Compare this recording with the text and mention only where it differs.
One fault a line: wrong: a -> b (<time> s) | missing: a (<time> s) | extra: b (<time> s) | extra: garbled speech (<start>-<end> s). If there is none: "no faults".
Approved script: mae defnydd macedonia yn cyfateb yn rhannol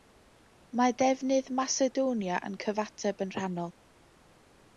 no faults